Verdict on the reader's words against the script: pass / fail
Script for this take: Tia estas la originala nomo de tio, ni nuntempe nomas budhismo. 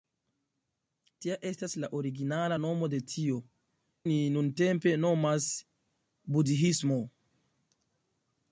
pass